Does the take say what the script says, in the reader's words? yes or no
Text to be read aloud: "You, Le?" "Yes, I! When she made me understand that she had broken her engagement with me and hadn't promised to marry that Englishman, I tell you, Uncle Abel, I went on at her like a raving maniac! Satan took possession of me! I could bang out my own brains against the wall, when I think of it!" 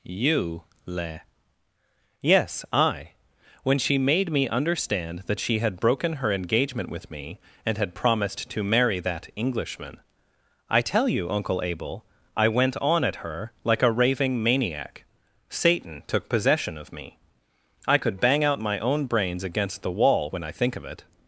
no